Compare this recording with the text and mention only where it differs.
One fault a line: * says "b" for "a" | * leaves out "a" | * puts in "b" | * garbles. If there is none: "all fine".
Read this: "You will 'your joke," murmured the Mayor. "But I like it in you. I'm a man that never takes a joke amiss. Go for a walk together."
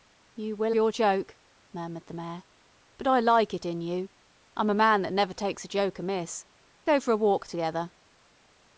all fine